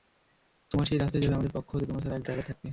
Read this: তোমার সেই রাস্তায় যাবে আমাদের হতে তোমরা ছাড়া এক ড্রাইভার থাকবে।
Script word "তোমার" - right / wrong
right